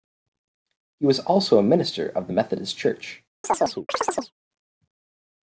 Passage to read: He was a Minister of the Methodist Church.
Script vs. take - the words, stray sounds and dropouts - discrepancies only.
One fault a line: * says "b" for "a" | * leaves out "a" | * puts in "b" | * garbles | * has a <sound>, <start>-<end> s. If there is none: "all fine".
* puts in "also"
* has a chirp, 3.4-4.3 s